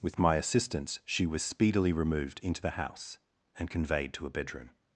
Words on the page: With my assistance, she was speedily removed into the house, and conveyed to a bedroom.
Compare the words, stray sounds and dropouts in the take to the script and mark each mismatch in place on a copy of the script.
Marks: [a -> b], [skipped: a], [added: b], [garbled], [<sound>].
With my assistance, she was speedily removed into the house, and conveyed to a bedroom.